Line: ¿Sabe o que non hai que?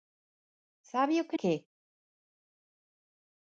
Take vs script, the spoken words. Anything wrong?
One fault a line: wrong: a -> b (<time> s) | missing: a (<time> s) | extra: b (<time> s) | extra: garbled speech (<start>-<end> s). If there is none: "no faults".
missing: non hai (1.4 s)